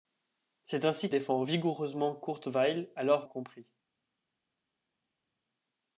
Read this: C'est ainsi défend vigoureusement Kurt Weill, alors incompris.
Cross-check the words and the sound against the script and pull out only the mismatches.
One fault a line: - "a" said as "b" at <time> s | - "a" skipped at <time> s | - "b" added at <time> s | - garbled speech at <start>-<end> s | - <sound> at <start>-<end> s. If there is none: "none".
none